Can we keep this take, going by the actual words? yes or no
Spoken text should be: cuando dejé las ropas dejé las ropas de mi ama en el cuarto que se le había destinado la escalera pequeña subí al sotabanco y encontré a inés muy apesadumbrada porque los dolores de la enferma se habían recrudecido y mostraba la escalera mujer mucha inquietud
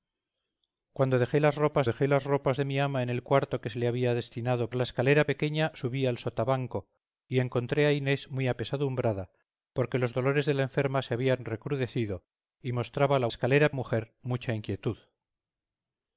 yes